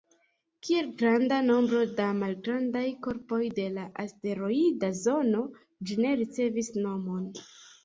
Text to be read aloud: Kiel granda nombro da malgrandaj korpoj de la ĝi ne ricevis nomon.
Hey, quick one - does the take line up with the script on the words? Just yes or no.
no